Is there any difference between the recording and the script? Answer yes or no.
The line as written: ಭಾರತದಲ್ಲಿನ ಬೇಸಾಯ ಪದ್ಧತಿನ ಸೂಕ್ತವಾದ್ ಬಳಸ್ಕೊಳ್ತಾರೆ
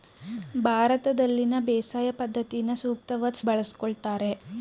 no